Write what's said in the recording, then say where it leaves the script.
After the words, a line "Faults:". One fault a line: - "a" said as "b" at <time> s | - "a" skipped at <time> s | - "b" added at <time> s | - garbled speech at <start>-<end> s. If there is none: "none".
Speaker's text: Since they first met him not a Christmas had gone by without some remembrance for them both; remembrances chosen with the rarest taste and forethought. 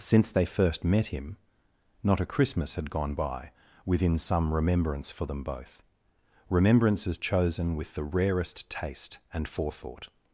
Since they first met him not a Christmas had gone by within some remembrance for them both; remembrances chosen with the rarest taste and forethought.
Faults:
- "without" said as "within" at 3.8 s